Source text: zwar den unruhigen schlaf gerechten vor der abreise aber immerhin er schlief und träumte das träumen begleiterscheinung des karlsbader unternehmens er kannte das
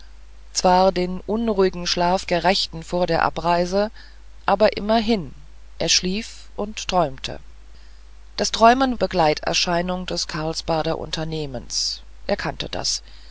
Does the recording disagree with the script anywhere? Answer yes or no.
no